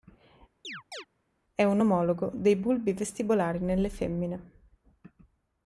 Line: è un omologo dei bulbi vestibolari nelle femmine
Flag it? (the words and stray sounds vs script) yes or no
yes